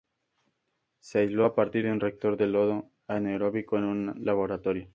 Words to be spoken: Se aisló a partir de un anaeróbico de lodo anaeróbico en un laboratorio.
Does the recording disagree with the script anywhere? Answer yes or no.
yes